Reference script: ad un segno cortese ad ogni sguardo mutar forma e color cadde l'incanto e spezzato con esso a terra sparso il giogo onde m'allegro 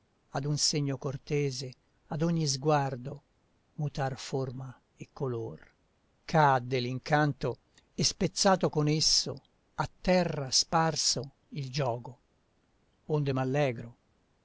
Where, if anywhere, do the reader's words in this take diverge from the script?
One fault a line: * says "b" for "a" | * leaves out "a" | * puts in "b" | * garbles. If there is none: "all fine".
all fine